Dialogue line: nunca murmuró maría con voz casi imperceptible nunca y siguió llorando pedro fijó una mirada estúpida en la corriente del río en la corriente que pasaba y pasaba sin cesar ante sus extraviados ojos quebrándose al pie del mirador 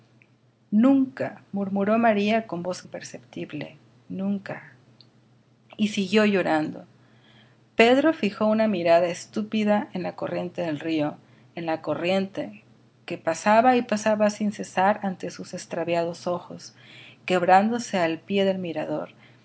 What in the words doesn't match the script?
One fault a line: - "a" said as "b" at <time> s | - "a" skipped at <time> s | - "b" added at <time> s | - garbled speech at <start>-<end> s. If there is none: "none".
- "casi" skipped at 2.8 s